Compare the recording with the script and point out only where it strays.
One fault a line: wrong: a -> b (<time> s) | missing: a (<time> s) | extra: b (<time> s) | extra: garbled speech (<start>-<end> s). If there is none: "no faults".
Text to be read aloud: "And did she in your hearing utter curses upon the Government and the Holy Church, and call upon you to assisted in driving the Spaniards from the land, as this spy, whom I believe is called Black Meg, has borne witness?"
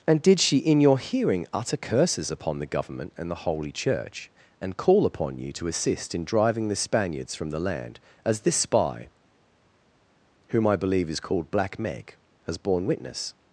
wrong: assisted -> assist (5.7 s)